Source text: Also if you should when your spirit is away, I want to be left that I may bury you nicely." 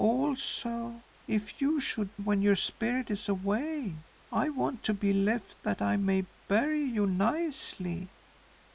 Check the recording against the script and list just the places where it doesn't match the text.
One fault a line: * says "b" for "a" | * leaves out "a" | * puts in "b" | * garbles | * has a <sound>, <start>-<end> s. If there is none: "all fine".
all fine